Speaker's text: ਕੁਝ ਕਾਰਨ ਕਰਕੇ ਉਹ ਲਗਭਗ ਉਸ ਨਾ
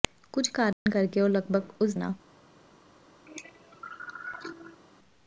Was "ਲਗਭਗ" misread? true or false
false